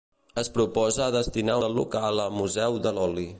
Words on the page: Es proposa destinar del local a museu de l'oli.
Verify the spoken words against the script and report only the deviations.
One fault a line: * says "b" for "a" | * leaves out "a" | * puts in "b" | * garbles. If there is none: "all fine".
all fine